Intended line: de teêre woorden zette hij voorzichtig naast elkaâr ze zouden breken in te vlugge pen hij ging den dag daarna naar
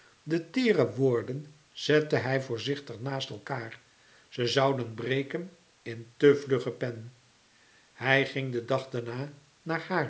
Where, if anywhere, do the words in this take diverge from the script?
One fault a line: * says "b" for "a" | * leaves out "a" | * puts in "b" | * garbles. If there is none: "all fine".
all fine